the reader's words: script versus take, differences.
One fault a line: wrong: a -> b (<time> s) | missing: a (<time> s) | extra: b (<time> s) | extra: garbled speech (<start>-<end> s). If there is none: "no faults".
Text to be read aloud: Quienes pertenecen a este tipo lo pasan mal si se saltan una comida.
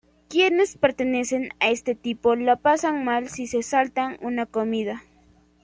no faults